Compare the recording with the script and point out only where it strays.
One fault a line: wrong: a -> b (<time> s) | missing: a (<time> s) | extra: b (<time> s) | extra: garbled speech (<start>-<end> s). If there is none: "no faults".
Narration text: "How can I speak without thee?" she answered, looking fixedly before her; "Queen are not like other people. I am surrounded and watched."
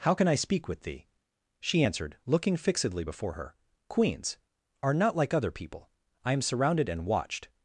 wrong: without -> with (0.7 s)
wrong: Queen -> Queens (3.9 s)